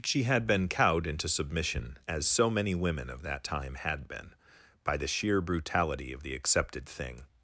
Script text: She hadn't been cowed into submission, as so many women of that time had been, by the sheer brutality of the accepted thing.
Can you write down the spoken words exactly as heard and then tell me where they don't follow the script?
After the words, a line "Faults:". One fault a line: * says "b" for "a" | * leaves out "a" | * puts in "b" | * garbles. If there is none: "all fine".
She had been cowed into submission, as so many women of that time had been, by the sheer brutality of the accepted thing.
Faults:
* says "had" for "hadn't"